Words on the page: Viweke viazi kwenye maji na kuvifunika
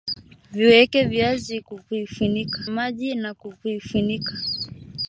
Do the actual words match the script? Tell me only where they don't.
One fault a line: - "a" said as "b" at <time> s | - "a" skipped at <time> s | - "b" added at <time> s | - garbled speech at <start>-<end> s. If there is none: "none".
- "kwenye" said as "kuvifunika" at 1.6 s